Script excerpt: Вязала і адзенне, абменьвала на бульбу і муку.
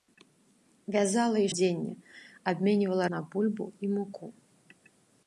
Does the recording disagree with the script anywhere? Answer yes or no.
no